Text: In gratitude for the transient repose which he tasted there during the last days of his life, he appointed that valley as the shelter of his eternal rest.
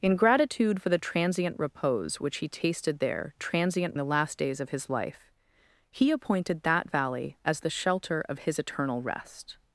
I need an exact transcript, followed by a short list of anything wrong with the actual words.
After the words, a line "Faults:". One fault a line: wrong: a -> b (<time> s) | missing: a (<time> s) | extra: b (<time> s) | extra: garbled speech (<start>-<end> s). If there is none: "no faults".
In gratitude for the transient repose which he tasted there transient the last days of his life, he appointed that valley as the shelter of his eternal rest.
Faults:
wrong: during -> transient (3.4 s)